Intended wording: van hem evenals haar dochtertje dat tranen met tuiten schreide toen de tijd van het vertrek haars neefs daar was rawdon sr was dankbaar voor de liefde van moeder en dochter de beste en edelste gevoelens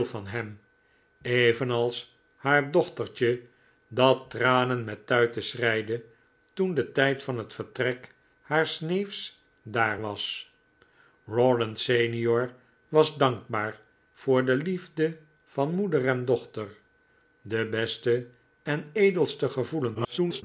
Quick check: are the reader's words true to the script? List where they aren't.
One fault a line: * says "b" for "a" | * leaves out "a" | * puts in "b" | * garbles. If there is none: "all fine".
* garbles